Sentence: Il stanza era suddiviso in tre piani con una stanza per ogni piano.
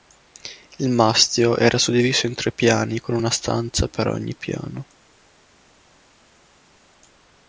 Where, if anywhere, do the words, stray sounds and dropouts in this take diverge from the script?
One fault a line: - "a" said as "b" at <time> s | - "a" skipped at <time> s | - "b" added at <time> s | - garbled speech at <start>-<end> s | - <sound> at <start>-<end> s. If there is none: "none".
- "stanza" said as "mastio" at 0.9 s